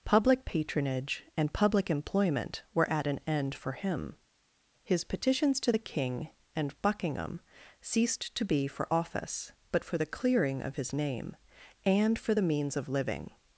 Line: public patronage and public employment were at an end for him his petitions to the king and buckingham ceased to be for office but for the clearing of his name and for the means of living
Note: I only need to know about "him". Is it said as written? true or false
true